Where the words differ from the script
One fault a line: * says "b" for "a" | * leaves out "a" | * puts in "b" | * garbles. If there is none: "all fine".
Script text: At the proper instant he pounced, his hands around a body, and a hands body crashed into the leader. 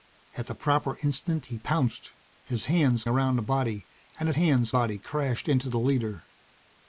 all fine